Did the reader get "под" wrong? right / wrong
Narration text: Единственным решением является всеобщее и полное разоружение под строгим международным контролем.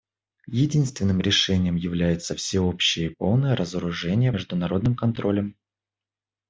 wrong